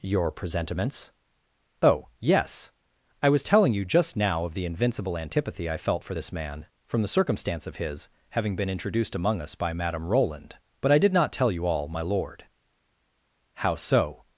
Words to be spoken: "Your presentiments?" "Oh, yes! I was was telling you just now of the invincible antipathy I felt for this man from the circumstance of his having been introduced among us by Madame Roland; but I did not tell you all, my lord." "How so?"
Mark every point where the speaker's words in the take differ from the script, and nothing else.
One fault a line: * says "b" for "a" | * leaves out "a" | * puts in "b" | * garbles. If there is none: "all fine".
* leaves out "was"